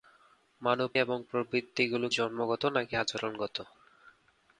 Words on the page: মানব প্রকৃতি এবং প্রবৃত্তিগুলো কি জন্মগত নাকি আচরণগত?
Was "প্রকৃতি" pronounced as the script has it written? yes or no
no